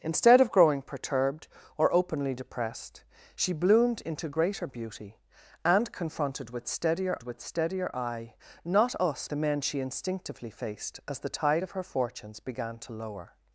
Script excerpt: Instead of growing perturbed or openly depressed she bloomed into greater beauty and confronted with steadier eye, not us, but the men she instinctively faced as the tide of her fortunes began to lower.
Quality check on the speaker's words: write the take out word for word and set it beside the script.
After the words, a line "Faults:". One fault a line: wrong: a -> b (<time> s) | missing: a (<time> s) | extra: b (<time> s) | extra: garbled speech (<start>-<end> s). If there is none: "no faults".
Instead of growing perturbed or openly depressed she bloomed into greater beauty and confronted with steadier with steadier eye, not us, the men she instinctively faced as the tide of her fortunes began to lower.
Faults:
extra: with steadier (7.2 s)
missing: but (9.3 s)